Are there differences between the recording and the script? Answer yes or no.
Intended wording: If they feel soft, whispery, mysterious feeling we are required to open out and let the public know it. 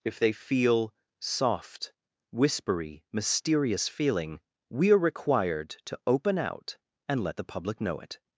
no